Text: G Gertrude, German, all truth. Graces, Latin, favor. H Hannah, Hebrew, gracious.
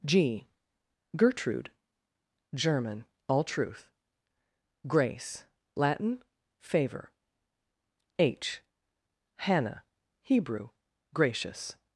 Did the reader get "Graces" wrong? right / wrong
wrong